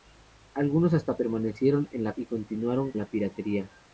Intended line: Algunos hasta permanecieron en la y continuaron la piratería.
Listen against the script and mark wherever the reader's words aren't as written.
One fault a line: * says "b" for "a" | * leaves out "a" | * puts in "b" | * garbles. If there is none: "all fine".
all fine